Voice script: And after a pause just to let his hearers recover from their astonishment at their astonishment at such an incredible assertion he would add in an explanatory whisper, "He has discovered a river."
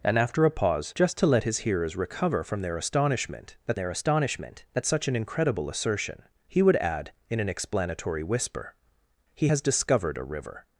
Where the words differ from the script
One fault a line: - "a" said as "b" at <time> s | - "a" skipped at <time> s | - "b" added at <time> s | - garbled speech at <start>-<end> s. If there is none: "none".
none